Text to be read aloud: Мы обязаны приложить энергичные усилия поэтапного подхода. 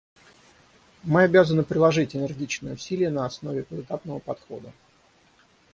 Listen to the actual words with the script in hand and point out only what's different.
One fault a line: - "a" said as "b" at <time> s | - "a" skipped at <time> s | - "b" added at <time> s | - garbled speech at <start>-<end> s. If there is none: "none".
- "на основе" added at 3.1 s